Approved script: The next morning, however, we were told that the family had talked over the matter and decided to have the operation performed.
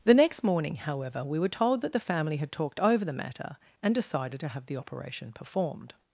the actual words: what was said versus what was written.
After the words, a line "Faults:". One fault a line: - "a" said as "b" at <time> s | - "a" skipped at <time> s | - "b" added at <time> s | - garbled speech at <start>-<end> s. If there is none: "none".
The next morning, however, we were told that the family had talked over the matter and decided to have the operation performed.
Faults:
none